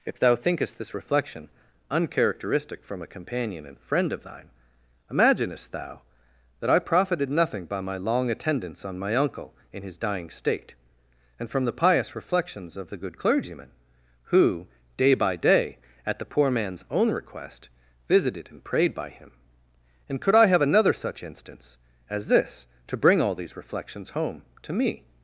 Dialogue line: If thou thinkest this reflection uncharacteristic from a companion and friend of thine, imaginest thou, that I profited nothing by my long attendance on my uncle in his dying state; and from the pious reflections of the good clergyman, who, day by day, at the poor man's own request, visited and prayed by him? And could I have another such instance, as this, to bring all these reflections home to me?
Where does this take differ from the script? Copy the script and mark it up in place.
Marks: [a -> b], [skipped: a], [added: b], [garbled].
If thou thinkest this reflection uncharacteristic from a companion and friend of thine, imaginest thou, that I profited nothing by my long attendance on my uncle in his dying state; and from the pious reflections of the good clergyman, who, day by day, at the poor man's own request, visited and prayed by him? And could I have another such instance, as this, to bring all these reflections home to me?